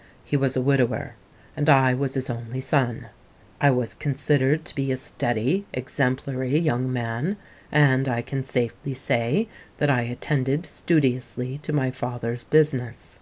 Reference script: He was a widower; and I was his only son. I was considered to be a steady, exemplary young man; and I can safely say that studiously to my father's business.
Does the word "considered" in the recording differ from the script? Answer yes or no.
no